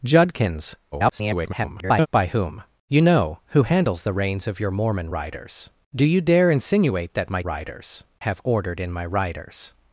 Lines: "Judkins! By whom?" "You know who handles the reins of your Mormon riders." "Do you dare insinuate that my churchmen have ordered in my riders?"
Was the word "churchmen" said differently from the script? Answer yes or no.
yes